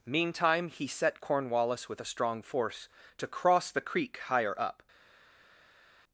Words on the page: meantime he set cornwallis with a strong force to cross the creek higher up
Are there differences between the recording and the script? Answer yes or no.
no